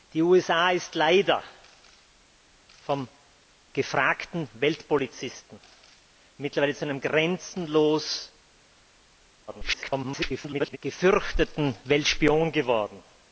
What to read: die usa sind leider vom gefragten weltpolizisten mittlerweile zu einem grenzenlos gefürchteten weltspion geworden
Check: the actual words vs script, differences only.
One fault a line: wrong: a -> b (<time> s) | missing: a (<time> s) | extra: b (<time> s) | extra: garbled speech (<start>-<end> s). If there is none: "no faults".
extra: garbled speech (9.5-10.8 s)